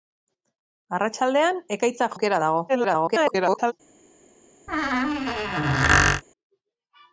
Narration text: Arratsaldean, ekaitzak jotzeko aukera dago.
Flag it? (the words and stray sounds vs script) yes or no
yes